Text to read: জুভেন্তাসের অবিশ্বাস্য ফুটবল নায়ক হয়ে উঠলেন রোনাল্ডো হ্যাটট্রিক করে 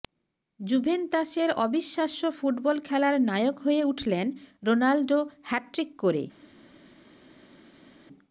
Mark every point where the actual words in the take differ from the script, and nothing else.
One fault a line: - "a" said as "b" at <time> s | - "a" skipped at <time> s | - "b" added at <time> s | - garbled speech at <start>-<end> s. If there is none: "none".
- "খেলার" added at 2.9 s